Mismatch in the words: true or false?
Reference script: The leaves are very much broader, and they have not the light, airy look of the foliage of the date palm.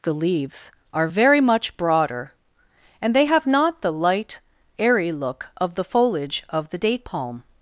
false